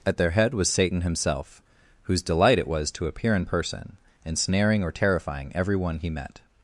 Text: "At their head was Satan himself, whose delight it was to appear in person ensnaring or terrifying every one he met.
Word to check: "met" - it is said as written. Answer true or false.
true